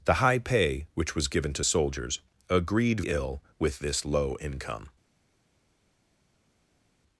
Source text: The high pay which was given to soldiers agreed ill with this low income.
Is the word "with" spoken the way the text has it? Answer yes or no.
yes